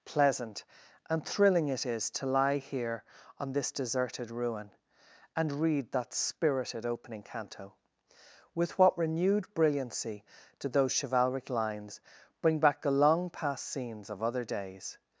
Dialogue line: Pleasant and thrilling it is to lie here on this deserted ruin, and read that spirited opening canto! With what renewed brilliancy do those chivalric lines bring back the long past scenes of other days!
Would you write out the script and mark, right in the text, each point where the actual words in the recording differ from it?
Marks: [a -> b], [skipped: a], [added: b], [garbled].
Pleasant and thrilling it is to lie here on this deserted ruin, and read that spirited opening canto! With what renewed brilliancy do those chivalric lines bring back the long past scenes of other days!